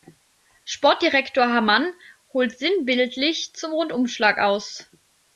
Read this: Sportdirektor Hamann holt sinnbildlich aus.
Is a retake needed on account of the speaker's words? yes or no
yes